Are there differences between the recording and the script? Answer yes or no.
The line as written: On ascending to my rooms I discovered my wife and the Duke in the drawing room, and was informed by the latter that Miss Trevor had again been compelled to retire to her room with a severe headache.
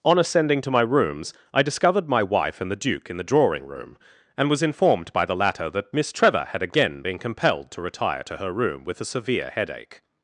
no